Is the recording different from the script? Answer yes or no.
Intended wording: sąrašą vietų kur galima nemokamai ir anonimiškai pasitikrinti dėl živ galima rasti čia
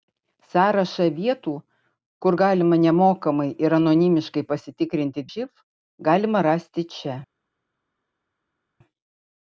yes